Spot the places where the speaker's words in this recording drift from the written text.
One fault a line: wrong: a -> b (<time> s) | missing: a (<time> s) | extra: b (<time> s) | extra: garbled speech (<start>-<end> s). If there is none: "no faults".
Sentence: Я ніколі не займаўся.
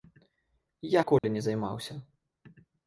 no faults